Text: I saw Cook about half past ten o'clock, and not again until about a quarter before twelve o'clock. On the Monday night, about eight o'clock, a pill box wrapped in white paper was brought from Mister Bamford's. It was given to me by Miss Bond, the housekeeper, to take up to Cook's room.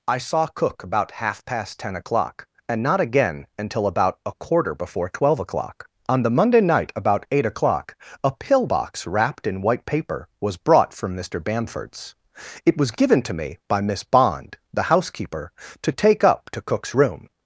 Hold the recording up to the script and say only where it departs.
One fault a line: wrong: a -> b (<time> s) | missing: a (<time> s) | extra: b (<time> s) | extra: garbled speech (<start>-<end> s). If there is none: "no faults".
no faults